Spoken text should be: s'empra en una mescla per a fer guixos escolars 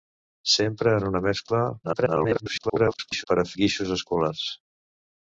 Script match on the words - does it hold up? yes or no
no